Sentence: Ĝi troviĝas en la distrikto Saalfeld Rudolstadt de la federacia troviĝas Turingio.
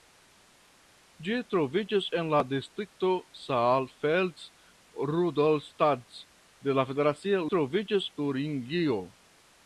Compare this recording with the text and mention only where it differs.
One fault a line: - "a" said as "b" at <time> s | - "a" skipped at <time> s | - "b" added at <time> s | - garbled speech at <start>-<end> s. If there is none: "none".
none